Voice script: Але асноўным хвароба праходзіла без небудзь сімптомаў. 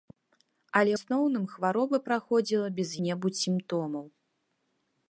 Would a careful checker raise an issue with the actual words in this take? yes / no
no